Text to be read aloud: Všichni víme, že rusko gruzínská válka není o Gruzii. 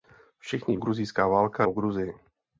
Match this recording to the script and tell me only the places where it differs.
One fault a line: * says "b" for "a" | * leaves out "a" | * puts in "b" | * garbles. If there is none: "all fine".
* leaves out "víme že rusko"
* leaves out "není"